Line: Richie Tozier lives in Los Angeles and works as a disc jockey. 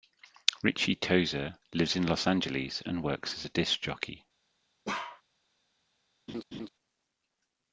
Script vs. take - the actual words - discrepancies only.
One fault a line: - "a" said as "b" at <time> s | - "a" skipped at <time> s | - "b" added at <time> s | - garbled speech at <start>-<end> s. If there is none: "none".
none